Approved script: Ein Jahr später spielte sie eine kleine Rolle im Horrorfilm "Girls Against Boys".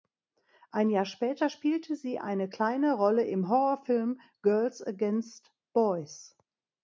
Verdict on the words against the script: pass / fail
pass